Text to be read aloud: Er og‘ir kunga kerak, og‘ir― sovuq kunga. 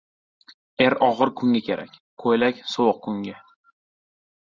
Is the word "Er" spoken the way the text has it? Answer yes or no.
yes